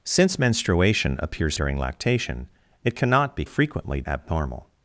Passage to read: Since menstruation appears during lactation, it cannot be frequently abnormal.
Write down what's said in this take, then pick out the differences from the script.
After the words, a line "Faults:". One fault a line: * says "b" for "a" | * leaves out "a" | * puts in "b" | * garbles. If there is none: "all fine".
Since menstruation appears during lactation, it cannot be frequently abnormal.
Faults:
all fine